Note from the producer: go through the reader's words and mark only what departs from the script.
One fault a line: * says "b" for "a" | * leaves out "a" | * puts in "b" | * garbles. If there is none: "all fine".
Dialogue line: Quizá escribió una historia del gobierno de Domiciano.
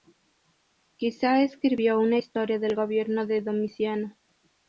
all fine